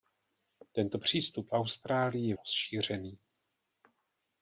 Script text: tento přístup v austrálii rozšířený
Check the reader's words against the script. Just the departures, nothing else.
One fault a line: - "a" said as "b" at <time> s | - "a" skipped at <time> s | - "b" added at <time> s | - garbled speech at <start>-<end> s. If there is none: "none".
none